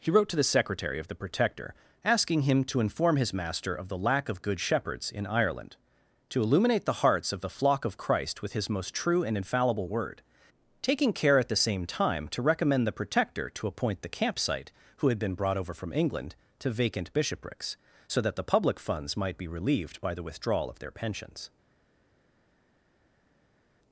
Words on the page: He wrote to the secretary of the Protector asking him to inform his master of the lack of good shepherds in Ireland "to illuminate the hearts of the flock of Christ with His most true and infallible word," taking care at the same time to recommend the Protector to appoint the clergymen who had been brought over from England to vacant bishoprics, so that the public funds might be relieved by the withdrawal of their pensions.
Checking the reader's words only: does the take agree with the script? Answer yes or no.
no